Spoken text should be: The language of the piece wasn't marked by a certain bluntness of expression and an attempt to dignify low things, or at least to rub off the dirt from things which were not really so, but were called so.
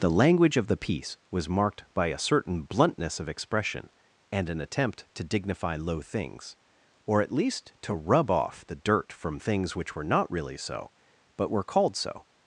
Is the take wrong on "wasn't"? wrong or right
wrong